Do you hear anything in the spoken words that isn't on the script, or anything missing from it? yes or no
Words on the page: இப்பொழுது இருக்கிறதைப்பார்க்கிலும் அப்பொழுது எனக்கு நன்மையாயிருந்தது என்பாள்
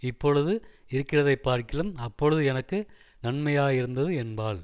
no